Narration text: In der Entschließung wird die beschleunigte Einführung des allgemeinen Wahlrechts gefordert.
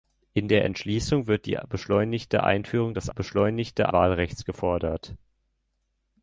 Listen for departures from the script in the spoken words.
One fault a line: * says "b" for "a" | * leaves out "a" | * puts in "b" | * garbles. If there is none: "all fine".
* says "beschleunigte" for "allgemeinen"